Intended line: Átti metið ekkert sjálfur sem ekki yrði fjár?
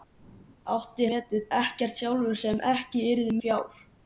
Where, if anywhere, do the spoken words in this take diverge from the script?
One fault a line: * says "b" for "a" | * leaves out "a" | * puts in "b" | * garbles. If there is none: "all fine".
all fine